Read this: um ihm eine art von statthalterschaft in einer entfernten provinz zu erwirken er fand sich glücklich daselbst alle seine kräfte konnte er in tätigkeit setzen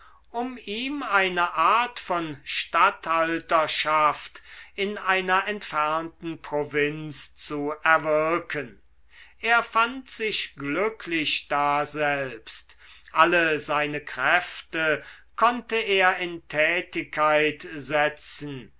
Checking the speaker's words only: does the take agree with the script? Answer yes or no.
yes